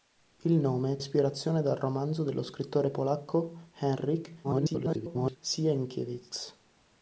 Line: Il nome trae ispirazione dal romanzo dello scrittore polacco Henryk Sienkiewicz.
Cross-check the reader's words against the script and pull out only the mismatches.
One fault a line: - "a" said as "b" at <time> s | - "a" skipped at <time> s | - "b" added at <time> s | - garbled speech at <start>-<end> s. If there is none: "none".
- "trae" skipped at 1.0 s
- garbled speech at 4.4-5.4 s